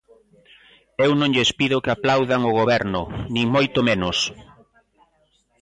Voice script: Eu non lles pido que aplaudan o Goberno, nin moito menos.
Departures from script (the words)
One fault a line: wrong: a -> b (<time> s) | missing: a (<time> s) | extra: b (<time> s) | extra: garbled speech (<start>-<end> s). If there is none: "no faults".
no faults